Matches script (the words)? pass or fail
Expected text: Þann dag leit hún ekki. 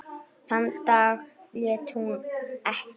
pass